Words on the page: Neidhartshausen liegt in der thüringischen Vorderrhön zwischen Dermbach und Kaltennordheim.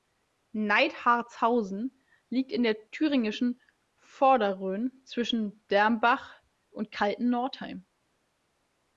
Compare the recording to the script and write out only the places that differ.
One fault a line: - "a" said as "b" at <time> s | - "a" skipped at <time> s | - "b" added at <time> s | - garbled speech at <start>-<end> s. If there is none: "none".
none